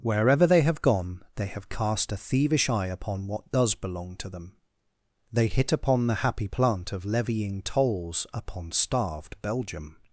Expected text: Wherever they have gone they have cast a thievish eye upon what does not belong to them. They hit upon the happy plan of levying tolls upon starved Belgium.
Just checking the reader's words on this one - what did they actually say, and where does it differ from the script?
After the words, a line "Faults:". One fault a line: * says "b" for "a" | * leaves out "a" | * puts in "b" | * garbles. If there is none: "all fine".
Wherever they have gone they have cast a thievish eye upon what does belong to them. They hit upon the happy plant of levying tolls upon starved Belgium.
Faults:
* leaves out "not"
* says "plant" for "plan"